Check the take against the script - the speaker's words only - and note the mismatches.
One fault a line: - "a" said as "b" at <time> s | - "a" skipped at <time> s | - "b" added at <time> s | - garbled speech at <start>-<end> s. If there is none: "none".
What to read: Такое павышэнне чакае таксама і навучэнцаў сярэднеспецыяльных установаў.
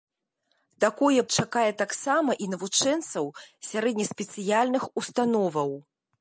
- "павышэнне" skipped at 1.2 s